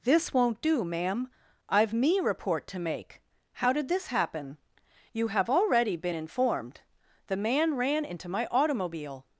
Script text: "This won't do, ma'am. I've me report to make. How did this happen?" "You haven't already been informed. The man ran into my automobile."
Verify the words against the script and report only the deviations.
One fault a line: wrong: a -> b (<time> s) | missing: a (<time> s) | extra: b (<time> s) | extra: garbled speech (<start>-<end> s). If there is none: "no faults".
wrong: haven't -> have (5.3 s)